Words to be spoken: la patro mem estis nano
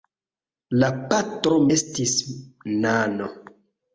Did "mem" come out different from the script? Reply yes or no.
yes